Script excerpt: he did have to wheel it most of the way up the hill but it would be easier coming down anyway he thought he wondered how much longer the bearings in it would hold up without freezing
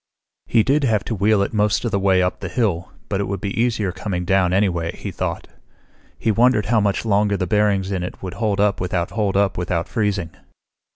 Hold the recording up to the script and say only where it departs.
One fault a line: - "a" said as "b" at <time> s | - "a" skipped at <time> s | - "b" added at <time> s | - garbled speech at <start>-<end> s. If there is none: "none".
- "hold up without" added at 9.1 s